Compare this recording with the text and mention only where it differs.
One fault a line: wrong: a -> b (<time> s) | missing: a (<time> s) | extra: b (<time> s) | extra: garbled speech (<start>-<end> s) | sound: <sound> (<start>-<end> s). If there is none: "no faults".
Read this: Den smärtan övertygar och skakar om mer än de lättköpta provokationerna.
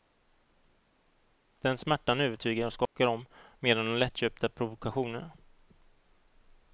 sound: dropout (2.9-3.0 s)